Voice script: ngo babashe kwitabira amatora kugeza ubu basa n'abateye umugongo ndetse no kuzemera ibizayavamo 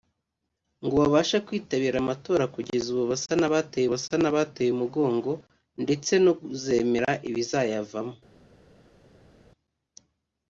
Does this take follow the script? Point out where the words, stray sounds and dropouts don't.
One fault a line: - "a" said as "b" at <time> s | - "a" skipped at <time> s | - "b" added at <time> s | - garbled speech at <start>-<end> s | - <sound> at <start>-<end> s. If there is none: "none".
- "basa n'abateye" added at 3.9 s